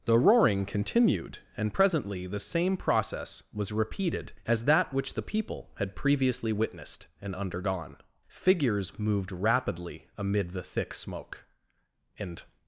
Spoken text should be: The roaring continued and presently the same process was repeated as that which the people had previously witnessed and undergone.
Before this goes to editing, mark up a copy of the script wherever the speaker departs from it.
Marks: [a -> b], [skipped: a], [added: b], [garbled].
The roaring continued and presently the same process was repeated as that which the people had previously witnessed and undergone. [added: Figures moved rapidly amid the thick smoke and]